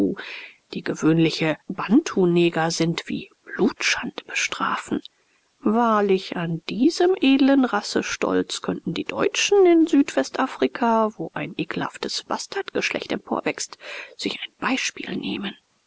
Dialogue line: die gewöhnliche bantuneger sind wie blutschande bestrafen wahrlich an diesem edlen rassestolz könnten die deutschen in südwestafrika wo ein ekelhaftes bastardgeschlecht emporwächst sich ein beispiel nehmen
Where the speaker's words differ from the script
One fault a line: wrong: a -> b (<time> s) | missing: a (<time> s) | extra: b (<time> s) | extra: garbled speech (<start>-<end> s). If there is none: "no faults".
no faults